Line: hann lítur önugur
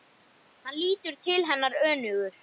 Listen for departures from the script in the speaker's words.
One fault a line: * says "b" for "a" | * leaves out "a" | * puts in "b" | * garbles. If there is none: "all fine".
* puts in "til hennar"